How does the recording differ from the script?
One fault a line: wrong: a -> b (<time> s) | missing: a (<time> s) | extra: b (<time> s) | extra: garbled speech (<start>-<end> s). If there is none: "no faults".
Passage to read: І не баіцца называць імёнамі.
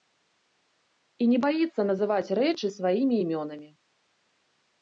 extra: рэчы сваімі (2.4 s)